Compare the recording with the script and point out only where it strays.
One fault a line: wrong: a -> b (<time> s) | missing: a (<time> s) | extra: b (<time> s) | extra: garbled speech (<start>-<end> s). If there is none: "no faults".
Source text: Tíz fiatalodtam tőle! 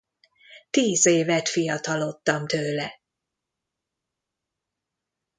extra: évet (1.1 s)